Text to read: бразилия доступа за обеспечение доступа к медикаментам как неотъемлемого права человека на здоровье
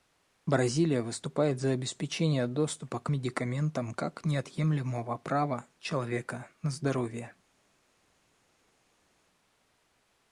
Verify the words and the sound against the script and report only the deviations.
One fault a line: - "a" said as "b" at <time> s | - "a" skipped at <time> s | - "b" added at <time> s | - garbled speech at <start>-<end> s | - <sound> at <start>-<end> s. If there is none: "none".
- "доступа" said as "выступает" at 1.0 s